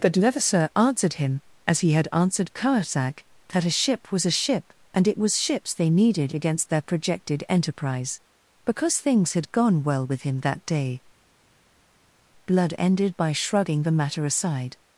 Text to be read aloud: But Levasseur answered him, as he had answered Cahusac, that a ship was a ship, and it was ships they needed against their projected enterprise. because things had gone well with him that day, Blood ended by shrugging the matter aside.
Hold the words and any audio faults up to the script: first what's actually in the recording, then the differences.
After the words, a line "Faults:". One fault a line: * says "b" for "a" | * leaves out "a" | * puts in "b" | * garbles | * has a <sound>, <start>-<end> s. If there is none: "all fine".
But Levasseur answered him, as he had answered Cahusac, that a ship was a ship, and it was ships they needed against their projected enterprise. because things had gone well with him that day, Blood ended by shrugging the matter aside.
Faults:
all fine